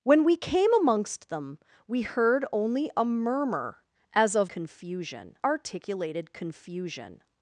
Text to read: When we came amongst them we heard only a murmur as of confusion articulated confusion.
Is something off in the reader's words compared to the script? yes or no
no